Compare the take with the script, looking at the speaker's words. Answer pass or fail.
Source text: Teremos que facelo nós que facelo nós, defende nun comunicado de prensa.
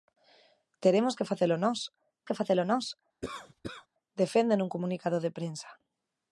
pass